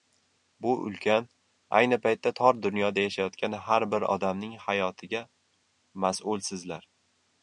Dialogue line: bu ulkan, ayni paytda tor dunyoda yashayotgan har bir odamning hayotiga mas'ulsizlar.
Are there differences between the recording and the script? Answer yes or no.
no